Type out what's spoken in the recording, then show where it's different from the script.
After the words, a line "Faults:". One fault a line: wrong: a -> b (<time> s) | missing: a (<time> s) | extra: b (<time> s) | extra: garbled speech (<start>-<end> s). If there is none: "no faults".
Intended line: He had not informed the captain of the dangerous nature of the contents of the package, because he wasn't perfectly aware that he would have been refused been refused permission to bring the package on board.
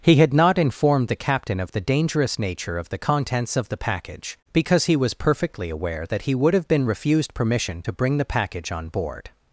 He had not informed the captain of the dangerous nature of the contents of the package, because he was perfectly aware that he would have been refused permission to bring the package on board.
Faults:
wrong: wasn't -> was (5.0 s)
missing: been refused (7.3 s)